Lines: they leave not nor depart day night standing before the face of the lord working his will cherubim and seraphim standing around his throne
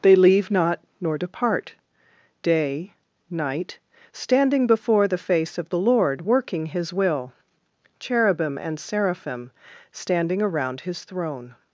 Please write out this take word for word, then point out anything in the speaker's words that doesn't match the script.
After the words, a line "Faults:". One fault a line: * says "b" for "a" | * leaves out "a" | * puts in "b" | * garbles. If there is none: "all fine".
they leave not nor depart day night standing before the face of the lord working his will cherubim and seraphim standing around his throne
Faults:
all fine